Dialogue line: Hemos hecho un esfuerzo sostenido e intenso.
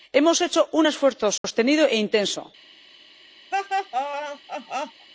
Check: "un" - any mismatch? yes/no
no